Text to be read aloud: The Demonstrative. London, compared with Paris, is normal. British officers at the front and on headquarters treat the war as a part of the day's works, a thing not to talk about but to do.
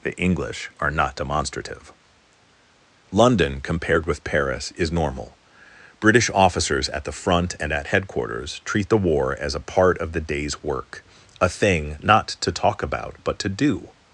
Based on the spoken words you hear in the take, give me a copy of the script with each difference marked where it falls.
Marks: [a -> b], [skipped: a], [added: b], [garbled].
The [added: English are not] Demonstrative. London, compared with Paris, is normal. British officers at the front and [on -> at] headquarters treat the war as a part of the day's [works, -> work] a thing not to talk about but to do.